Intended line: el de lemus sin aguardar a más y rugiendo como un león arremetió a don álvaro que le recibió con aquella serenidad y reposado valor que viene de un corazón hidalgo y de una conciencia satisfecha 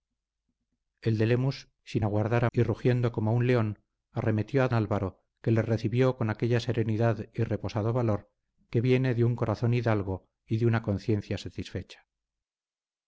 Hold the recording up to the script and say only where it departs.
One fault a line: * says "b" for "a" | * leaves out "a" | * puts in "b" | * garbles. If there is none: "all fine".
* leaves out "más"
* leaves out "don"